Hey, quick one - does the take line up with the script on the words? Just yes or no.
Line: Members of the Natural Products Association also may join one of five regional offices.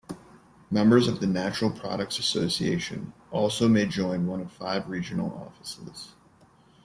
yes